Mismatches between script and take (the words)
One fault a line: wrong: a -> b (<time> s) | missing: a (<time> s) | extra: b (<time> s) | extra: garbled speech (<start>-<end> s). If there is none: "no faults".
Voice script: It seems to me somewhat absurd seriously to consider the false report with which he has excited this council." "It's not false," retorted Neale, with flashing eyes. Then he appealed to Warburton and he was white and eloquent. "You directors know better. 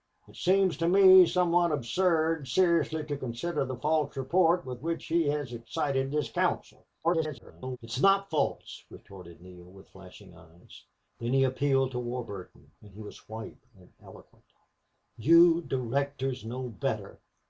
extra: garbled speech (7.0-7.8 s)